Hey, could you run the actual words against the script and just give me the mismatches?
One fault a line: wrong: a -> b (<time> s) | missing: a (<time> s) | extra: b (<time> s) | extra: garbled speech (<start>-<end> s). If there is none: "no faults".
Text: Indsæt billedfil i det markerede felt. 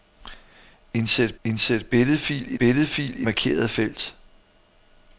extra: indsæt (1.4 s)
wrong: det -> billedfil (2.5 s)